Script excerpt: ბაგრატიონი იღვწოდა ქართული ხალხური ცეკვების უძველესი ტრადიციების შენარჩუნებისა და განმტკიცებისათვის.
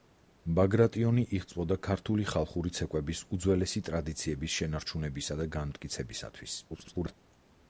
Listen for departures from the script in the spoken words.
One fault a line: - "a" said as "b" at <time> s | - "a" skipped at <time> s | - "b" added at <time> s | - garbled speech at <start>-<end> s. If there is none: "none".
- garbled speech at 6.7-7.2 s